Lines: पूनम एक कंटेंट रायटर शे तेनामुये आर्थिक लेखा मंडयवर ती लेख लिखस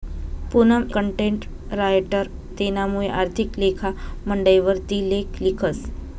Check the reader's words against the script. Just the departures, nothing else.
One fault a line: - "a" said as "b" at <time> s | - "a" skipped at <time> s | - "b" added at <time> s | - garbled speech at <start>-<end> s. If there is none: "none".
- "एक" skipped at 0.8 s
- "शे" skipped at 2.3 s